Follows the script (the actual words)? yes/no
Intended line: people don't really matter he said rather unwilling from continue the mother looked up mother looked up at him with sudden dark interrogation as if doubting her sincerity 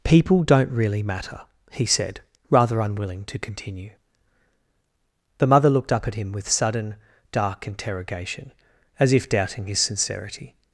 no